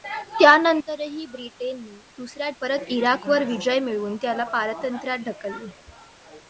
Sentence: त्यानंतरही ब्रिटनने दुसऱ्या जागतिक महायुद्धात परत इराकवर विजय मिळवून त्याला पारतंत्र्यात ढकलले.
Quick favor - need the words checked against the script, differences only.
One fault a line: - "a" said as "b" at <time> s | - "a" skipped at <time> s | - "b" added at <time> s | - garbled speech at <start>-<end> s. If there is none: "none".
- "जागतिक महायुद्धात" skipped at 2.5 s